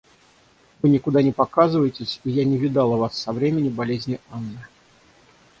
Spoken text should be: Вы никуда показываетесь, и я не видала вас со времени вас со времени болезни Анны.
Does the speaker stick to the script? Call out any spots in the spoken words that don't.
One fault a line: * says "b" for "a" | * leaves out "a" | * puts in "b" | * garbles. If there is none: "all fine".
* puts in "не"
* leaves out "вас со времени"